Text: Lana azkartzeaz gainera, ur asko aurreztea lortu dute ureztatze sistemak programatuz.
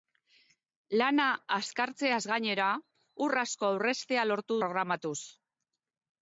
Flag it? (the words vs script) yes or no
yes